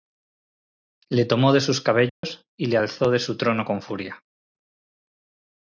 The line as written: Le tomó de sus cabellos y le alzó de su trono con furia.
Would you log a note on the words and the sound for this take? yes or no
yes